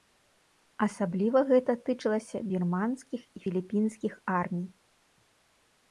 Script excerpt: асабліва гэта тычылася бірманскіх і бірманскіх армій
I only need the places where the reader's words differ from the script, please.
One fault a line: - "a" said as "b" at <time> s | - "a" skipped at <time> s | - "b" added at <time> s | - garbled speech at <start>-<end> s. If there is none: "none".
- "бірманскіх" said as "філіпінскіх" at 3.4 s